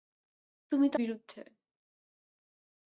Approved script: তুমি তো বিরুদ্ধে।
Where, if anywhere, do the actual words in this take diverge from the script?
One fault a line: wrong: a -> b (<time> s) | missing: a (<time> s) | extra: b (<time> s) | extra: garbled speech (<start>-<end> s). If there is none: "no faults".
no faults